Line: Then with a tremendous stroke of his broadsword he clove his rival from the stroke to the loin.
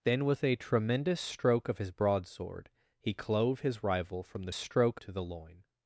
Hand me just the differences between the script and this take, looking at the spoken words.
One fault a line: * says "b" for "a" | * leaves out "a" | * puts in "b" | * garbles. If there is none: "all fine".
all fine